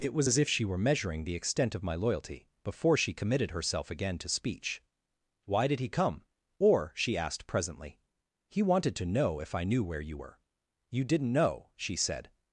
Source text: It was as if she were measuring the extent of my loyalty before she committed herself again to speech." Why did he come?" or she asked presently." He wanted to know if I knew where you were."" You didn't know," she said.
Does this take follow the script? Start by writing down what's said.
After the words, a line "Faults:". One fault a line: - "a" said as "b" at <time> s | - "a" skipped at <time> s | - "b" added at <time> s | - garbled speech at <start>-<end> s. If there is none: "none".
It was as if she were measuring the extent of my loyalty before she committed herself again to speech." Why did he come?" or she asked presently." He wanted to know if I knew where you were."" You didn't know," she said.
Faults:
none